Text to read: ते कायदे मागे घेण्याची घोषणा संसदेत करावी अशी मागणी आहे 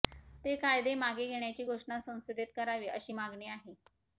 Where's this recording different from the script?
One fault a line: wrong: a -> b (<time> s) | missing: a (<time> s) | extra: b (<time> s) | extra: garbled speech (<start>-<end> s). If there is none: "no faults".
no faults